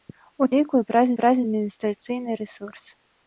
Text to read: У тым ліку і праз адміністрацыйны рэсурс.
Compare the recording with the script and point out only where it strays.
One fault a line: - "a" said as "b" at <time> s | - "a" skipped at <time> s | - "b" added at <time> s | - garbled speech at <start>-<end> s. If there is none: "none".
- "тым" skipped at 0.5 s
- "праз" added at 1.2 s